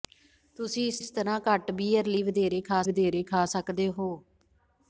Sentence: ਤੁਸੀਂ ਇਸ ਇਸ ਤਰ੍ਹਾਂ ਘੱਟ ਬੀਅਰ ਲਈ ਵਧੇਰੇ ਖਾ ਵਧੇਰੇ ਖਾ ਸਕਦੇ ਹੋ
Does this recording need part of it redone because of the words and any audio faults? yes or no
no